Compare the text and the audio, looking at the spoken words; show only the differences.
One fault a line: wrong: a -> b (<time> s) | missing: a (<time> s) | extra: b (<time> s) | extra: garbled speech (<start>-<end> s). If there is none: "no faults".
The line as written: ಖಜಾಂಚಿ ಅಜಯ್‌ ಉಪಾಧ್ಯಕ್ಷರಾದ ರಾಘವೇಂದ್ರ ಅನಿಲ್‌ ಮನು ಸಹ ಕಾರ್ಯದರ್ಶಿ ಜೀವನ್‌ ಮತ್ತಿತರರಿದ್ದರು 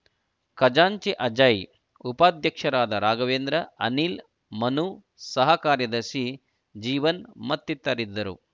no faults